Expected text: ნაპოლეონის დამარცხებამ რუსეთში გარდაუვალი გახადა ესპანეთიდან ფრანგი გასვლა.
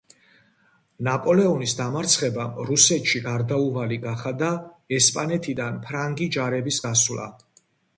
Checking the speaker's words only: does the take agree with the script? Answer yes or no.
no